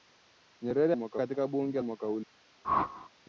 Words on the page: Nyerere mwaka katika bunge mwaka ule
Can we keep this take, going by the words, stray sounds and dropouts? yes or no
no